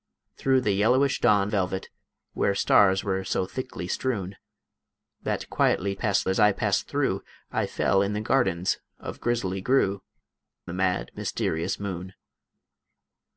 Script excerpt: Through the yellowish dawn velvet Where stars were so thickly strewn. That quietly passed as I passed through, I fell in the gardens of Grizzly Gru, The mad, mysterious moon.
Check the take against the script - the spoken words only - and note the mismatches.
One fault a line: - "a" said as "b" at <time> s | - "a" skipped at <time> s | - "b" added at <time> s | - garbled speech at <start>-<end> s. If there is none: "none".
none